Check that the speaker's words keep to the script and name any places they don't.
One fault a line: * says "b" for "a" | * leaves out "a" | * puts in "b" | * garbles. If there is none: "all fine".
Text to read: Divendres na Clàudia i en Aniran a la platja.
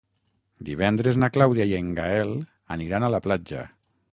* puts in "Gaël"